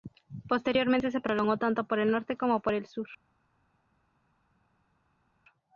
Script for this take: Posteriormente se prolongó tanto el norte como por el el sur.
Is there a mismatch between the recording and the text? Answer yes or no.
yes